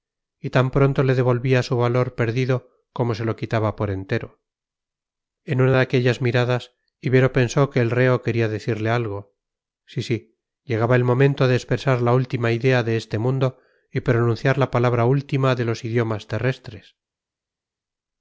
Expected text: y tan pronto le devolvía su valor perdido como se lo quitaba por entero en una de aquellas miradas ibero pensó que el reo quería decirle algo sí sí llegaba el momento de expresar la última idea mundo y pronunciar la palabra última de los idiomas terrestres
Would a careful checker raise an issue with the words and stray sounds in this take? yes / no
yes